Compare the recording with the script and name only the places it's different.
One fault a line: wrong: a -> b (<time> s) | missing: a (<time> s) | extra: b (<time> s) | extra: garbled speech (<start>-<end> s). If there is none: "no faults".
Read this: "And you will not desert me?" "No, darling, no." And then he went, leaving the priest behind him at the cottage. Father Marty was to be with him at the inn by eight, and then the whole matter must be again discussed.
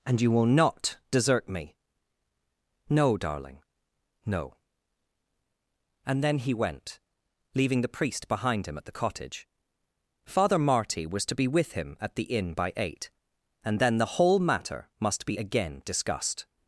no faults